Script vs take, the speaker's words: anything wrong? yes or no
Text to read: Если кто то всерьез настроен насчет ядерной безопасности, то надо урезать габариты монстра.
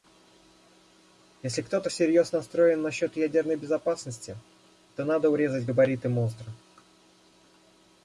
no